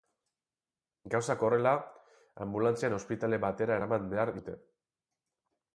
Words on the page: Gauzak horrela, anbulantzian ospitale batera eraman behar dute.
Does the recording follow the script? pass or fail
pass